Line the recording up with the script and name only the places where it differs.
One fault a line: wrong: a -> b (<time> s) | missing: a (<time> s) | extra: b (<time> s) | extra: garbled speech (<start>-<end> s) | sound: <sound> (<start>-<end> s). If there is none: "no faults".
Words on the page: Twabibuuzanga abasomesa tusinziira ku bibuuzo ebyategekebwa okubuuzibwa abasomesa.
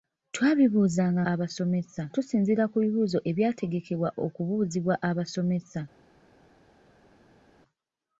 no faults